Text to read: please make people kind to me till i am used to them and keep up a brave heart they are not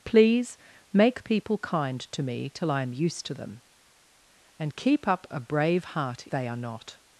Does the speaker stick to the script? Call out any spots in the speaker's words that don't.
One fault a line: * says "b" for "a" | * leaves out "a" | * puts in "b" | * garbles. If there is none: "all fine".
all fine